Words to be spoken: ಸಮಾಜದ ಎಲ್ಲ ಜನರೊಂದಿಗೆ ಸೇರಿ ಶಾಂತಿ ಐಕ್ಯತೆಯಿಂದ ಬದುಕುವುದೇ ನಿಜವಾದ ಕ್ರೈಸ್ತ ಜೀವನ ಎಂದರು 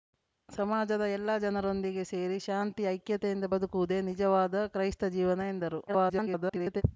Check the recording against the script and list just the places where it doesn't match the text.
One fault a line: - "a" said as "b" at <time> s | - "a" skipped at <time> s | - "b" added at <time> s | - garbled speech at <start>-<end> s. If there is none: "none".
- garbled speech at 5.9-6.8 s